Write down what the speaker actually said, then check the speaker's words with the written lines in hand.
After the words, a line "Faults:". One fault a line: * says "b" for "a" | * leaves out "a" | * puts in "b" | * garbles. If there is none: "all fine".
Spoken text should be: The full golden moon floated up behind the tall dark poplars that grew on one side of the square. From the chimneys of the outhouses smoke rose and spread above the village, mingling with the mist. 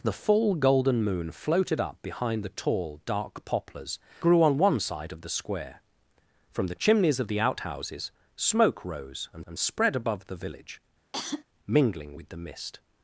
The full golden moon floated up behind the tall dark poplars grew on one side of the square. From the chimneys of the outhouses smoke rose and and spread above the village, mingling with the mist.
Faults:
* leaves out "that"
* puts in "and"